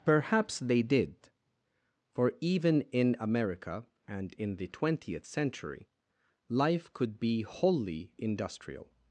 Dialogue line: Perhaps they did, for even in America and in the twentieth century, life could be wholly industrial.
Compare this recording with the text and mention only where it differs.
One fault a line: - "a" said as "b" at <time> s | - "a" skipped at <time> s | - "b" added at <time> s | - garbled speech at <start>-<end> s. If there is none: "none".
none